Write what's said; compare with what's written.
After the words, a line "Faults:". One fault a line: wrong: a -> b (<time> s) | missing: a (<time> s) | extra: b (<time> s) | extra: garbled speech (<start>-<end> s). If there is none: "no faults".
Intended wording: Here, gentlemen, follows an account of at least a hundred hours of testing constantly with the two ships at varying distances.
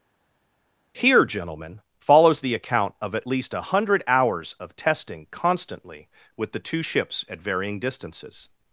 Here, gentlemen, follows the account of at least a hundred hours of testing constantly with the two ships at varying distances.
Faults:
wrong: an -> the (2.4 s)